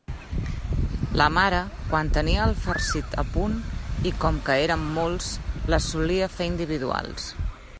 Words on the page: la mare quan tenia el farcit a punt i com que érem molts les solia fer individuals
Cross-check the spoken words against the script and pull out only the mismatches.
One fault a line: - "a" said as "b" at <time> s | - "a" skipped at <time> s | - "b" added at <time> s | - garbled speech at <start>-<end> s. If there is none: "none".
none